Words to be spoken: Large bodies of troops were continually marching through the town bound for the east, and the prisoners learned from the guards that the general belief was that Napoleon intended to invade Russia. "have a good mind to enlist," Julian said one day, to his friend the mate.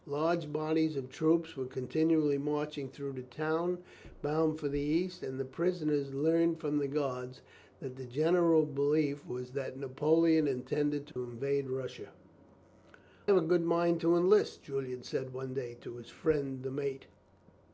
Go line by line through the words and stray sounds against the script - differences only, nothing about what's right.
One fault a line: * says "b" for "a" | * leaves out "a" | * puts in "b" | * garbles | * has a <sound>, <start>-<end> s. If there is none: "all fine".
* has a dropout, 11.1-11.2 s